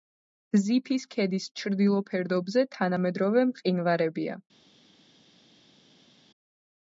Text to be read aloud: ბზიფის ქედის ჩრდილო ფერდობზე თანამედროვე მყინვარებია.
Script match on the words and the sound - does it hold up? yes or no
yes